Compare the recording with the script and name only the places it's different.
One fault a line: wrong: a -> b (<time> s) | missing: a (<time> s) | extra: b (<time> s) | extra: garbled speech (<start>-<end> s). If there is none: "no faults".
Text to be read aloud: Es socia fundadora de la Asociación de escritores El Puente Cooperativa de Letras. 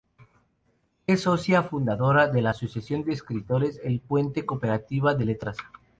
no faults